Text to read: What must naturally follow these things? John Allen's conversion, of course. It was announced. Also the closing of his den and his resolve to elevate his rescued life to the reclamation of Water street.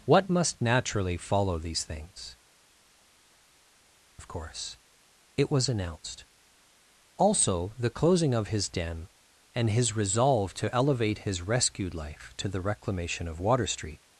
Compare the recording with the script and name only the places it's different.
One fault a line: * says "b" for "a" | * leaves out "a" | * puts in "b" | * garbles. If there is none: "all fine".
* leaves out "John Allen's conversion"